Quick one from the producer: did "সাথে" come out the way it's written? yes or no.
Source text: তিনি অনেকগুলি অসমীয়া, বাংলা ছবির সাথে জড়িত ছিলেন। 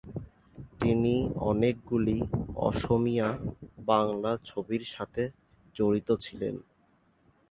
yes